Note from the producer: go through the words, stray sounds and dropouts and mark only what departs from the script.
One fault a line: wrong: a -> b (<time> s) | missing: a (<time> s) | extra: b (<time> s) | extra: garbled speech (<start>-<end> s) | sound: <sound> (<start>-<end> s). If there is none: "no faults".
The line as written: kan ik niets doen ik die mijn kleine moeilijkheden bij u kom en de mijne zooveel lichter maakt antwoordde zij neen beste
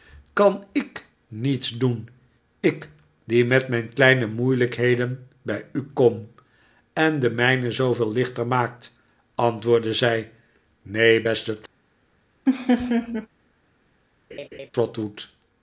extra: met (3.5 s)
sound: laugh (12.5-13.3 s)
sound: laugh (14.3-14.7 s)